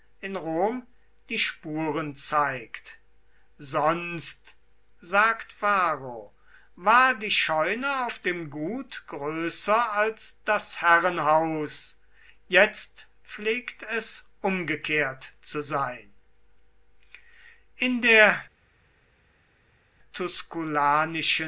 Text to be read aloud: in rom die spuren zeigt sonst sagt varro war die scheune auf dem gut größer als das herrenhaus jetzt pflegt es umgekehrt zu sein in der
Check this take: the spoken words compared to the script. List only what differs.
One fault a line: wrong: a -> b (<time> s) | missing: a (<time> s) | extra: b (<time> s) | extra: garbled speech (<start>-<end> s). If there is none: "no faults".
no faults